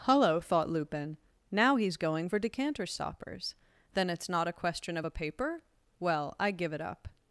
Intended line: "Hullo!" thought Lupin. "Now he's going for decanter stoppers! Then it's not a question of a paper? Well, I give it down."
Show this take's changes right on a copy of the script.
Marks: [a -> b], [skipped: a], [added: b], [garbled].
"Hullo!" thought Lupin. "Now he's going for decanter stoppers! Then it's not a question of a paper? Well, I give it [down." -> up]